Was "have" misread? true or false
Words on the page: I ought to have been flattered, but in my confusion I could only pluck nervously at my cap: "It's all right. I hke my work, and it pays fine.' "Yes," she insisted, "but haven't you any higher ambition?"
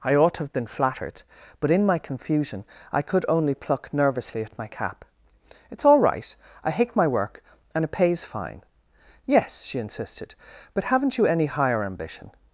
false